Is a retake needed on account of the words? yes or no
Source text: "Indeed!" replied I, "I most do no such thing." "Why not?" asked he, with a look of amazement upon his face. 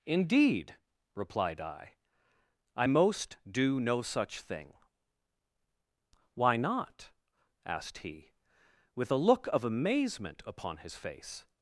no